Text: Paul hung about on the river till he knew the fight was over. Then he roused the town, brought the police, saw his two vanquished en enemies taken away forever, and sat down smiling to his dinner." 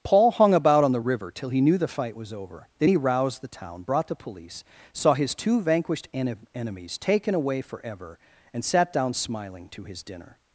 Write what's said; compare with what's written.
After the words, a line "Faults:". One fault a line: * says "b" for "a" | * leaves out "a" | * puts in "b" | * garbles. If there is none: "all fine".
Paul hung about on the river till he knew the fight was over. Then he roused the town, brought the police, saw his two vanquished en enemies taken away forever, and sat down smiling to his dinner."
Faults:
all fine